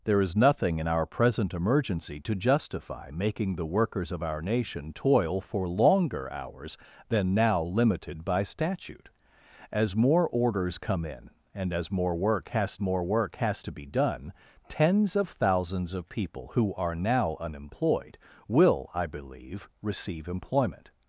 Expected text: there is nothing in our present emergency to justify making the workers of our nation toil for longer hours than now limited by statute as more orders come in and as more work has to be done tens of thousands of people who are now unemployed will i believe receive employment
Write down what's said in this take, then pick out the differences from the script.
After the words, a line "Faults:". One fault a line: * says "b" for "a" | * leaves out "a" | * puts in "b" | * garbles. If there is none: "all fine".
there is nothing in our present emergency to justify making the workers of our nation toil for longer hours than now limited by statute as more orders come in and as more work has more work has to be done tens of thousands of people who are now unemployed will i believe receive employment
Faults:
* puts in "more work has"